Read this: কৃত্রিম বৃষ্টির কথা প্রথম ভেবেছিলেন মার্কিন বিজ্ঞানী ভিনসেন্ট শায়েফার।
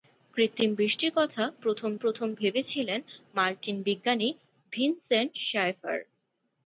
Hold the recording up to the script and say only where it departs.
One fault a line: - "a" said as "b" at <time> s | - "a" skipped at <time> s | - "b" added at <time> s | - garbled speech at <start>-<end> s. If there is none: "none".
- "প্রথম" added at 2.0 s